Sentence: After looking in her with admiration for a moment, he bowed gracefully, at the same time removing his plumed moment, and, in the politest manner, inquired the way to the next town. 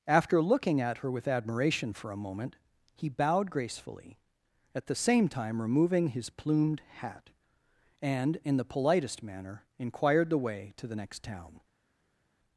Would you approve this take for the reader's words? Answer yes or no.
no